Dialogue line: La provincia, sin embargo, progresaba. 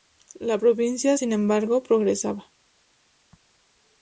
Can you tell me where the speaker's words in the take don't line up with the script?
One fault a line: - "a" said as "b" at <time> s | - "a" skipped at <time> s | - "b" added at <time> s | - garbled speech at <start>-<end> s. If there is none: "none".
none